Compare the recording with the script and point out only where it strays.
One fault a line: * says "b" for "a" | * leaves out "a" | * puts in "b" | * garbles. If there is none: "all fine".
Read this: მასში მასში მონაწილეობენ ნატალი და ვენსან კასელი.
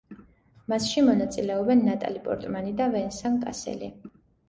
* leaves out "მასში"
* puts in "პორტმანი"